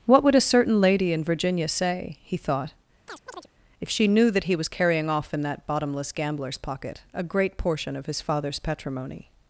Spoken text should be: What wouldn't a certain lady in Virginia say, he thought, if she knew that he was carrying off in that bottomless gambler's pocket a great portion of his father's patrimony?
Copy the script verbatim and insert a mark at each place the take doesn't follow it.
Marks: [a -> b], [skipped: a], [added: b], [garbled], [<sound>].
What [wouldn't -> would] a certain lady in Virginia say, he thought, [chirp] if she knew that he was carrying off in that bottomless gambler's pocket a great portion of his father's patrimony?